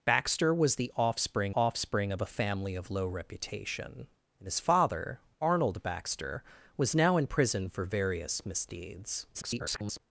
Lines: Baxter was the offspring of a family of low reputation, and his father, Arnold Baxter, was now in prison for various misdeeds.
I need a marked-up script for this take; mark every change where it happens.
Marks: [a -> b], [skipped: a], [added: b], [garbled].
Baxter was the offspring [added: offspring] of a family of low reputation, and his father, Arnold Baxter, was now in prison for various misdeeds. [garbled]